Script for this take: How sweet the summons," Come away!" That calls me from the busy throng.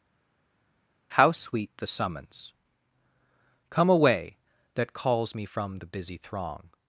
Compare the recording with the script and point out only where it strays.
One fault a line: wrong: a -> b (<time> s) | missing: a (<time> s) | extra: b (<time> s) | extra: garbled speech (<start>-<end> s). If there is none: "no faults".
no faults